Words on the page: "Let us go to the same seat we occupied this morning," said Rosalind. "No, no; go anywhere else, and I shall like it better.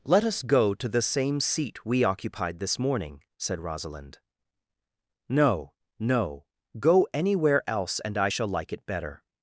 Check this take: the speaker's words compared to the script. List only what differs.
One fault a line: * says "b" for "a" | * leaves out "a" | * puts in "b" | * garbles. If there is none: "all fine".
all fine